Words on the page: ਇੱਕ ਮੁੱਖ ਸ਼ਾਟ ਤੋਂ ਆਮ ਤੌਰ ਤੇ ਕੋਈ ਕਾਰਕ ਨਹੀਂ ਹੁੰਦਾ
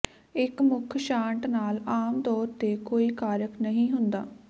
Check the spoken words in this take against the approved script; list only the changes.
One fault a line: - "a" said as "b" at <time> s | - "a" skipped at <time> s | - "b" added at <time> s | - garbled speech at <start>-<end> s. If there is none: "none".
- "ਤੋਂ" said as "ਨਾਲ" at 1.5 s